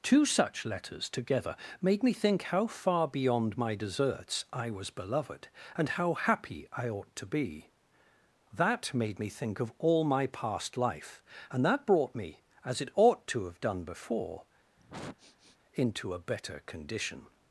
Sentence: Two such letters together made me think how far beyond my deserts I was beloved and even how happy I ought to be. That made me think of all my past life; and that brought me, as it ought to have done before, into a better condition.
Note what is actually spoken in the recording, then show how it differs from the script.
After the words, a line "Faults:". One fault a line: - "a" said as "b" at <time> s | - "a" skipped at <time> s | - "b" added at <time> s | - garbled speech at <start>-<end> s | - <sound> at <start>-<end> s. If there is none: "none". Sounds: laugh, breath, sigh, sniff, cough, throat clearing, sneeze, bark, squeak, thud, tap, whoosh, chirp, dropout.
Two such letters together made me think how far beyond my deserts I was beloved and how happy I ought to be. That made me think of all my past life; and that brought me, as it ought to have done before, into a better condition.
Faults:
- "even" skipped at 5.9 s
- sniff at 14.8-15.6 s